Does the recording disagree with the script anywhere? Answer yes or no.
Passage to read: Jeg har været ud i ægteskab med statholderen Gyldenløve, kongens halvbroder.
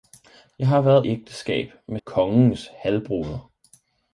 yes